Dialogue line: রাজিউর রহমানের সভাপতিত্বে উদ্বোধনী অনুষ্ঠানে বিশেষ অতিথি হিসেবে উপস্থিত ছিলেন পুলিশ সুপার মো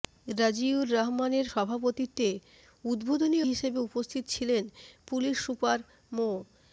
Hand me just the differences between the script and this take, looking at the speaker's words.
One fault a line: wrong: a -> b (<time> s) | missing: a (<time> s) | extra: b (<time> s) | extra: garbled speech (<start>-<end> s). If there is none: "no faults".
missing: অনুষ্ঠানে বিশেষ অতিথি (3.4 s)